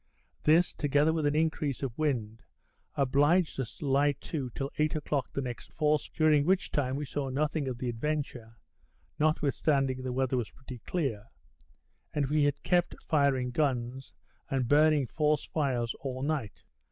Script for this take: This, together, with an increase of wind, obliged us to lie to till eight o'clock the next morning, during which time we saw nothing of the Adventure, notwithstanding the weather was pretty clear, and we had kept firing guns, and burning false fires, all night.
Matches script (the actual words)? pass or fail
fail